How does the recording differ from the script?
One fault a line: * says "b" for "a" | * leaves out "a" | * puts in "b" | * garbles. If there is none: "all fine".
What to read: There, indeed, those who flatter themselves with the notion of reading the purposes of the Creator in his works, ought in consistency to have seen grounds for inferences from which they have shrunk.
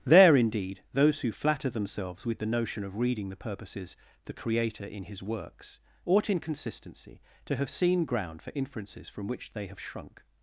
* leaves out "of"
* says "ground" for "grounds"